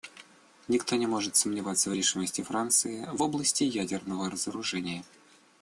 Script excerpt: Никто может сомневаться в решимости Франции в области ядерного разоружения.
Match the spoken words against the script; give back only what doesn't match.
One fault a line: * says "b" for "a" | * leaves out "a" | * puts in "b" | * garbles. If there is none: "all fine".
* puts in "не"